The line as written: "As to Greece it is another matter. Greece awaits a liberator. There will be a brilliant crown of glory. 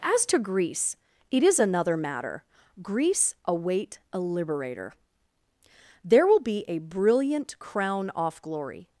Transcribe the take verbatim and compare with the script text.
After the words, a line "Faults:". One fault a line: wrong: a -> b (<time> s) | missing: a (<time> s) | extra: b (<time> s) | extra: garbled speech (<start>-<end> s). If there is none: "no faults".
"As to Greece it is another matter. Greece await a liberator. There will be a brilliant crown off glory.
Faults:
wrong: awaits -> await (3.5 s)
wrong: of -> off (8.2 s)